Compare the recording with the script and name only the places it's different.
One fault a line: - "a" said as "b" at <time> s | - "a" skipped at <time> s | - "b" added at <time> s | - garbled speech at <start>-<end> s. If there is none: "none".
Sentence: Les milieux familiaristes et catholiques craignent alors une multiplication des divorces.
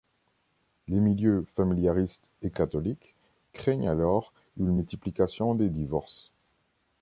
none